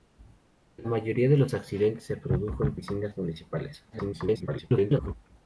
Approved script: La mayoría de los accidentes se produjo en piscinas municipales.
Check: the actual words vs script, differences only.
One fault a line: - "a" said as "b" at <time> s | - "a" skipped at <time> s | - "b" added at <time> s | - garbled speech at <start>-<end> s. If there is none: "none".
- garbled speech at 3.9-5.1 s